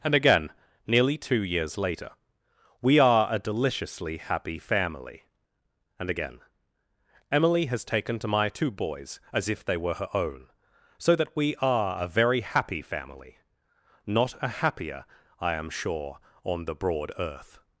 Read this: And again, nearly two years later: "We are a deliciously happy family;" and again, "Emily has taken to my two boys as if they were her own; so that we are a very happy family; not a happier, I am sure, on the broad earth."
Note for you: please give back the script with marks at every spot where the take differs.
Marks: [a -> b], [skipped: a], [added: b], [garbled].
And again, nearly two years later: "We are a deliciously happy family;" and again, "Emily has taken to my two boys as if they were her own; so that we are a very happy family; not a happier, I am sure, on the broad earth."